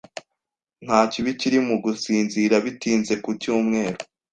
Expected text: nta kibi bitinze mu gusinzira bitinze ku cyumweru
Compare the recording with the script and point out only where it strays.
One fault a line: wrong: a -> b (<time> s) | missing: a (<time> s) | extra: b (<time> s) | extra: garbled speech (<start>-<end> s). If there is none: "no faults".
wrong: bitinze -> kiri (1.4 s)